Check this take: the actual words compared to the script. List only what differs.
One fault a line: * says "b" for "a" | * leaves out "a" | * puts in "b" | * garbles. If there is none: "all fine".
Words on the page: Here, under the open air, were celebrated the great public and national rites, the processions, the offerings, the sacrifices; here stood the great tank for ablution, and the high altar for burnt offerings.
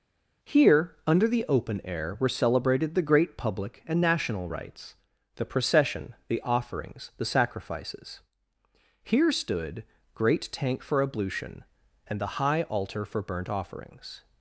* says "procession" for "processions"
* leaves out "the"